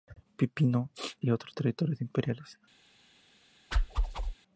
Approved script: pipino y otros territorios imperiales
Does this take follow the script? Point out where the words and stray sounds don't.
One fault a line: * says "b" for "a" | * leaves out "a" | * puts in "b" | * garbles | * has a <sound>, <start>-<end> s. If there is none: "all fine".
* has a whoosh, 3.7-4.3 s